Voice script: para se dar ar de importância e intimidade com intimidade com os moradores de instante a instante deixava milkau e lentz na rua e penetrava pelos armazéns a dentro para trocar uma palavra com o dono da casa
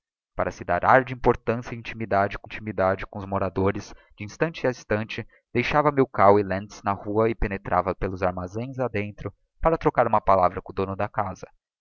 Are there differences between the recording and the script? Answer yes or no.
no